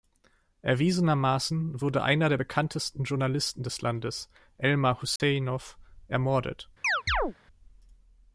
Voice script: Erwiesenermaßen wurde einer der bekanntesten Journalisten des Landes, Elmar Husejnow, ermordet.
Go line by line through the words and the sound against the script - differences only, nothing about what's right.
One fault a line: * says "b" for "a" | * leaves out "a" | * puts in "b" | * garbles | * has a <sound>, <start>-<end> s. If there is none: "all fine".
* has a dropout, 5.2-5.2 s
* has a chirp, 6.8-7.3 s